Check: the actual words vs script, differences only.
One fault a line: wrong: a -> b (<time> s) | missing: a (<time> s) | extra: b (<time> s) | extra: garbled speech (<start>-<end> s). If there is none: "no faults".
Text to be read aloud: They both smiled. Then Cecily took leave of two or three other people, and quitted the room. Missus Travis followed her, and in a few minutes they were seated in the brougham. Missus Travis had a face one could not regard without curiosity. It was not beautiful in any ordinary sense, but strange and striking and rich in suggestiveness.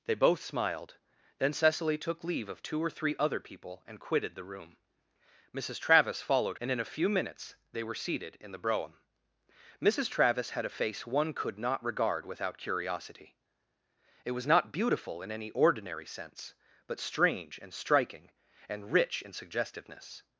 missing: her (6.6 s)